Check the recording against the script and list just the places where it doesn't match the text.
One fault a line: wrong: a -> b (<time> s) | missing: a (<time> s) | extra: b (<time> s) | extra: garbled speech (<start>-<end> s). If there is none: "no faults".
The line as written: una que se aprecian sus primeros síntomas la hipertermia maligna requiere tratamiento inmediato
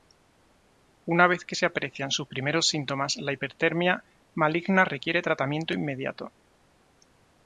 extra: vez (1.3 s)